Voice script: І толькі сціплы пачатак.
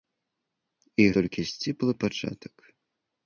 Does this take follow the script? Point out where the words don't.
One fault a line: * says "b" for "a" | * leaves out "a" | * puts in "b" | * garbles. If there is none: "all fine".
all fine